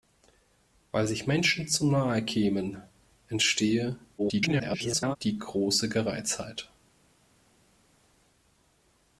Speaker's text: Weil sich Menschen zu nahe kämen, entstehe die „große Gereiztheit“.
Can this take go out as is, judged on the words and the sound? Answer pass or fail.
fail